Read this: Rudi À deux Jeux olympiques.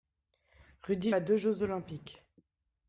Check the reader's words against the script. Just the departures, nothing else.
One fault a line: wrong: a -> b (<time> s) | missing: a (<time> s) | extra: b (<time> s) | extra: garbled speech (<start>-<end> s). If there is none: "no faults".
no faults